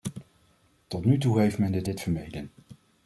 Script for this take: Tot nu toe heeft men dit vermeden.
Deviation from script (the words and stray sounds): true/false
true